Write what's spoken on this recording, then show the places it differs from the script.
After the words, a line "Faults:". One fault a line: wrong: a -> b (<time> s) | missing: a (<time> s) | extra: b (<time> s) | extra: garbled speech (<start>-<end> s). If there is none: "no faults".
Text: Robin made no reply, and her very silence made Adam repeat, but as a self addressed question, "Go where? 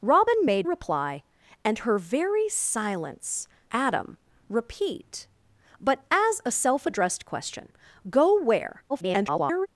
Robin made reply, and her very silence Adam repeat, but as a self addressed question, "Go where? [garbled]
Faults:
missing: no (0.7 s)
missing: made (3.5 s)
extra: garbled speech (8.9-9.7 s)